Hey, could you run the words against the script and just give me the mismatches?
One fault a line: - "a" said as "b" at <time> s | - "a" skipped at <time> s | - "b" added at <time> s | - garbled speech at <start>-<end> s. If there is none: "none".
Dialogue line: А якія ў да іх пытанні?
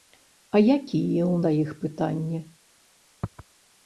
none